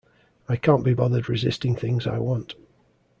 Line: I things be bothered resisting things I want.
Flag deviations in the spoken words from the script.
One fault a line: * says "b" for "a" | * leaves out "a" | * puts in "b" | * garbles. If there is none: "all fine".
* says "can't" for "things"